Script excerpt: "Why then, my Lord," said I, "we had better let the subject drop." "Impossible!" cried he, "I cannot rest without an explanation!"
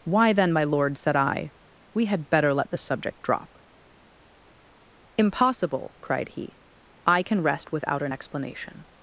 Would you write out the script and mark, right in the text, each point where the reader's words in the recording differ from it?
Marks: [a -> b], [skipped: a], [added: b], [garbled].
"Why then, my Lord," said I, "we had better let the subject drop." "Impossible!" cried he, "I [cannot -> can] rest without an explanation!"